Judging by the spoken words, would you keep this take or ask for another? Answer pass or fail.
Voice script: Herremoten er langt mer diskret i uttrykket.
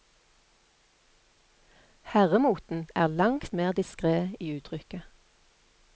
pass